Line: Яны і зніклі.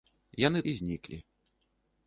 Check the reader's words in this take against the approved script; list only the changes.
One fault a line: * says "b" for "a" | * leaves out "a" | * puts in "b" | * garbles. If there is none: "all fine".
all fine